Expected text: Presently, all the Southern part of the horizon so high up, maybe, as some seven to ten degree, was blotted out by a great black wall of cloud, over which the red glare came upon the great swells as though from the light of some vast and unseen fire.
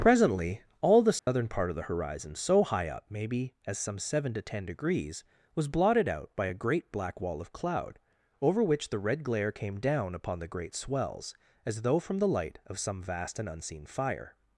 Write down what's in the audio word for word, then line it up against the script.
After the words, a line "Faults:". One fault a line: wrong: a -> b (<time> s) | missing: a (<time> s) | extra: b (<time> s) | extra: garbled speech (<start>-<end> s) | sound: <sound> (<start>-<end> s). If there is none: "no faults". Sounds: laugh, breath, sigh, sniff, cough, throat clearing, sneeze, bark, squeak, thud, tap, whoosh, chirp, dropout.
Presently, all the Southern part of the horizon so high up, maybe, as some seven to ten degrees, was blotted out by a great black wall of cloud, over which the red glare came down upon the great swells as though from the light of some vast and unseen fire.
Faults:
sound: dropout (1.2-1.3 s)
wrong: degree -> degrees (4.7 s)
extra: down (9.8 s)